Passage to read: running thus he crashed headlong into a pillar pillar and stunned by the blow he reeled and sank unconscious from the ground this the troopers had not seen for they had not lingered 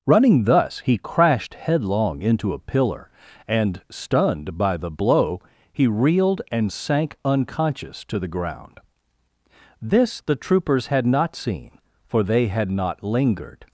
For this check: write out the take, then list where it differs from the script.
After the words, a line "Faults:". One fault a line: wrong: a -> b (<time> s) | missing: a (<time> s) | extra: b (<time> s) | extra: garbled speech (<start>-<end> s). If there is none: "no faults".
running thus he crashed headlong into a pillar and stunned by the blow he reeled and sank unconscious to the ground this the troopers had not seen for they had not lingered
Faults:
missing: pillar (3.1 s)
wrong: from -> to (8.1 s)